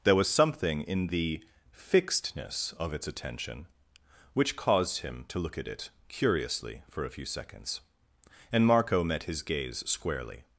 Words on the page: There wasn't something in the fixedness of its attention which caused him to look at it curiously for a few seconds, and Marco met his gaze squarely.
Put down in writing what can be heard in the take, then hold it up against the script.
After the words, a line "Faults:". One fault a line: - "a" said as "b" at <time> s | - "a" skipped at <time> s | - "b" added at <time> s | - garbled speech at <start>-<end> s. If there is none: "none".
There was something in the fixedness of its attention which caused him to look at it curiously for a few seconds, and Marco met his gaze squarely.
Faults:
- "wasn't" said as "was" at 0.1 s